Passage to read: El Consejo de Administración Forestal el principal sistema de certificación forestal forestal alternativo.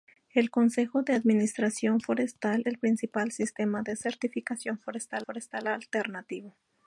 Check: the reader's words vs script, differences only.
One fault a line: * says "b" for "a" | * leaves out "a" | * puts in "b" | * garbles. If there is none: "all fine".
all fine